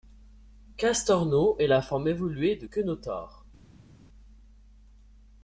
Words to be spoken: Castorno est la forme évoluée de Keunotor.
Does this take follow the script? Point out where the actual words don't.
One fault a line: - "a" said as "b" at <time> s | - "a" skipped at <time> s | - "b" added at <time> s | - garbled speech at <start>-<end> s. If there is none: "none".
none